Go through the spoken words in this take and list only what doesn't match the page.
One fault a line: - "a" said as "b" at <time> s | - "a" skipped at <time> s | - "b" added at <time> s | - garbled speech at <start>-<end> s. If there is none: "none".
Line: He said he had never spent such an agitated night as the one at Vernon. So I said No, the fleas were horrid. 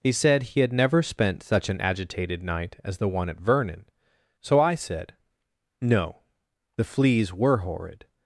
none